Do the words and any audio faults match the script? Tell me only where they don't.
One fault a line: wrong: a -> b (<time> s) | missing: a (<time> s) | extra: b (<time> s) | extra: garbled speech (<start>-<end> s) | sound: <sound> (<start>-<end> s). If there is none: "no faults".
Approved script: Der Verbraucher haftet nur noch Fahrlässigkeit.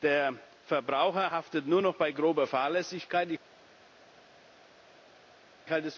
extra: bei grober (2.0 s)